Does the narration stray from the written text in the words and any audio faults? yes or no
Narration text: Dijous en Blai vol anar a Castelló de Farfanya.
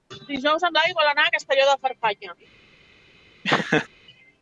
yes